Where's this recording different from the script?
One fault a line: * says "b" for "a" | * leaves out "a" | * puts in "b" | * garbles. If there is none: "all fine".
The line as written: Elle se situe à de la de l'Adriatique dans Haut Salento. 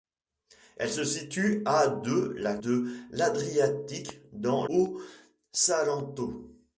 all fine